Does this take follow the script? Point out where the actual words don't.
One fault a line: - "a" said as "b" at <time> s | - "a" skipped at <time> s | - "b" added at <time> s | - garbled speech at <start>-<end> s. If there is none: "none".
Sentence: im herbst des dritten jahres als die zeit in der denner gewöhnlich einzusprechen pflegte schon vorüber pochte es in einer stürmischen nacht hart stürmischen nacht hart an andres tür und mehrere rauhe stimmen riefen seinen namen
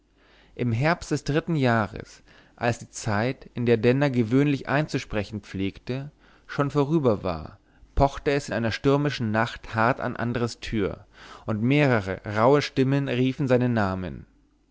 - "war" added at 7.2 s
- "stürmischen nacht hart" skipped at 10.0 s